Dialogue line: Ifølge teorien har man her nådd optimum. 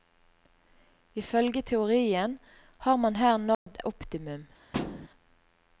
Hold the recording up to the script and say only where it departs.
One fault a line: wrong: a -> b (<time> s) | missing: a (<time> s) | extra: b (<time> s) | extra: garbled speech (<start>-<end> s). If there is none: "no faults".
no faults